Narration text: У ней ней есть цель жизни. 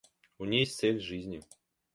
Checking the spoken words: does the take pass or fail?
fail